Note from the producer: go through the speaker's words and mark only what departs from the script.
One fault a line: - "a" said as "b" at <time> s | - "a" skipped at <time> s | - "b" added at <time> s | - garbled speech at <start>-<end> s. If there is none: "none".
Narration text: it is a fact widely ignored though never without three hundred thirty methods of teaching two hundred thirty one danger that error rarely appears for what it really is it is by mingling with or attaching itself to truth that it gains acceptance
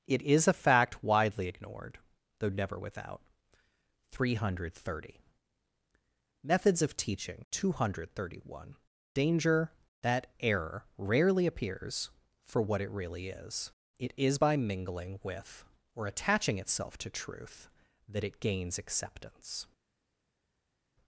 none